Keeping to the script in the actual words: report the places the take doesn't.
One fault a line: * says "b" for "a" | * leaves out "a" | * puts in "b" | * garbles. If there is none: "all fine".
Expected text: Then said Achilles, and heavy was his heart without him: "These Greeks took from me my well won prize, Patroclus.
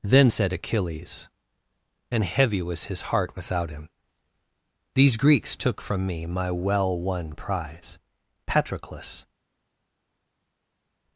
all fine